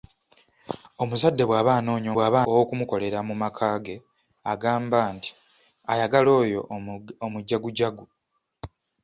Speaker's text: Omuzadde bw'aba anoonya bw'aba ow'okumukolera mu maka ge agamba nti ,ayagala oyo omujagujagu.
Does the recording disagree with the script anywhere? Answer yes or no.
no